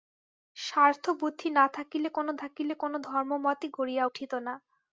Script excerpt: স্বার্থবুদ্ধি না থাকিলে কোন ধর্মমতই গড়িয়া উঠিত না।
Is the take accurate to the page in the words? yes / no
no